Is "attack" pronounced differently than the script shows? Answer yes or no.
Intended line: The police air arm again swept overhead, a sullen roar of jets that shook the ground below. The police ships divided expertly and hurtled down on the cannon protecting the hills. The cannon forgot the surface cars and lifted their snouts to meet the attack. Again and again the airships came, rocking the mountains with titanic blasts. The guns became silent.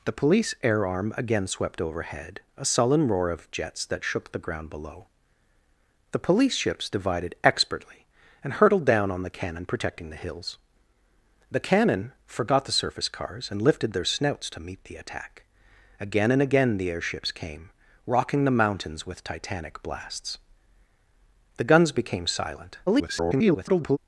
no